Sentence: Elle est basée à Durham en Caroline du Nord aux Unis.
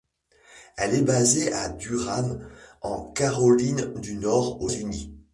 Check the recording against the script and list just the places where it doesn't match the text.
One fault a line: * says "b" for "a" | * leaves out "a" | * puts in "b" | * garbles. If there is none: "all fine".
all fine